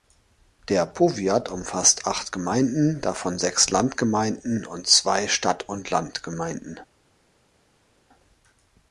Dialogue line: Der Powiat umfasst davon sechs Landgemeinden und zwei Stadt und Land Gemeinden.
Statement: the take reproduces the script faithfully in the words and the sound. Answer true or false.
false